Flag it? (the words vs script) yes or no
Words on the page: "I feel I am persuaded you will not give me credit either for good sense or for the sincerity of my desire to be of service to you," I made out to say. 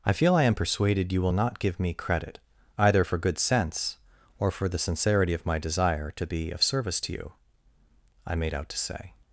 no